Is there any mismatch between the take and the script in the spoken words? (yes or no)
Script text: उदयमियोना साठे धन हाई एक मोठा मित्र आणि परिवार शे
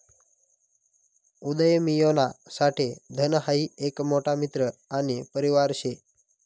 no